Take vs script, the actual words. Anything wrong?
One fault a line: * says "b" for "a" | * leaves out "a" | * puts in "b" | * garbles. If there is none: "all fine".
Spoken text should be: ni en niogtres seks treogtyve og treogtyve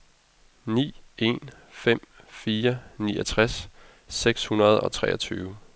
* puts in "fem fire"
* says "hundrede" for "treogtyve"